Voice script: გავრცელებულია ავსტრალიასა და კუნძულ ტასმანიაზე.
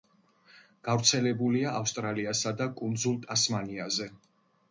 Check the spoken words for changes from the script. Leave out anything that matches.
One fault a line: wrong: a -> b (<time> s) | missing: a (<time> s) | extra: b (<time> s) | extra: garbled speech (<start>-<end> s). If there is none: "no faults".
no faults